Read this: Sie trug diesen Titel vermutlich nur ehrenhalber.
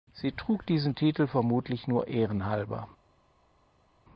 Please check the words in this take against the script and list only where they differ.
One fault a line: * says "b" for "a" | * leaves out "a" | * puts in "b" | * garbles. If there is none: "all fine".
all fine